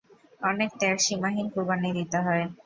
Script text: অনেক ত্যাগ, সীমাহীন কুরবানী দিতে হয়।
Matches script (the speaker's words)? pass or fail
pass